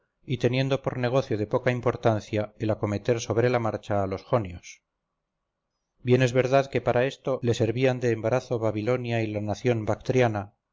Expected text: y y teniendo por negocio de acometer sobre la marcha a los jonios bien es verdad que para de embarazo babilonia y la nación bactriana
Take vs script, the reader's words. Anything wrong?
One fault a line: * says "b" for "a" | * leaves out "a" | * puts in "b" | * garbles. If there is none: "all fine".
* leaves out "y"
* puts in "poca importancia el"
* puts in "esto le servían"